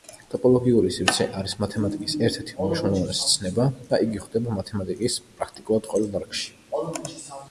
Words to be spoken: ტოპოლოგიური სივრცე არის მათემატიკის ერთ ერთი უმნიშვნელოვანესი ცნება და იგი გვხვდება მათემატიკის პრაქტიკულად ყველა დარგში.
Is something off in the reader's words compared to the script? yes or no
no